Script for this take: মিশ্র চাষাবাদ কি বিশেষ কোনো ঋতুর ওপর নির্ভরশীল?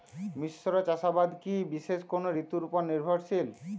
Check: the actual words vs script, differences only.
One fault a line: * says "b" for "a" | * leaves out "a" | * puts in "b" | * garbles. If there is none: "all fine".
all fine